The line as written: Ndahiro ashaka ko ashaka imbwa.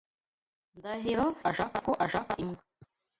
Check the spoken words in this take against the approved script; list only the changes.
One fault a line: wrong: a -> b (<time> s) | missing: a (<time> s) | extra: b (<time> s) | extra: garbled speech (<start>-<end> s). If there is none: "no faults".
no faults